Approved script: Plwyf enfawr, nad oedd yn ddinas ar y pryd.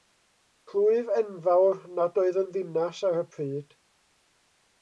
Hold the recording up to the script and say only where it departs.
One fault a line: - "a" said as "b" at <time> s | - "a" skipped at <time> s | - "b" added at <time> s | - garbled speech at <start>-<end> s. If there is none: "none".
none